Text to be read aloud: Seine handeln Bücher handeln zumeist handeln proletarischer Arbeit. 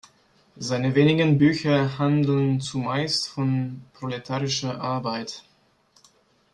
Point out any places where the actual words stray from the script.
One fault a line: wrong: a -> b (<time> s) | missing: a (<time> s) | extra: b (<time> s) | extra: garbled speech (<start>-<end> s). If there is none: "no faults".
wrong: handeln -> wenigen (0.9 s)
wrong: handeln -> von (3.3 s)